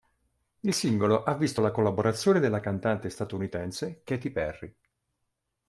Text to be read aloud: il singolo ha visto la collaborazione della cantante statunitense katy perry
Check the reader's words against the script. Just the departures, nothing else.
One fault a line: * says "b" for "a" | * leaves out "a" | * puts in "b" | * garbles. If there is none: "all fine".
all fine